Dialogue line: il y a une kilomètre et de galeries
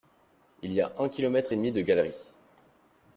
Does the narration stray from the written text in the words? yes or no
yes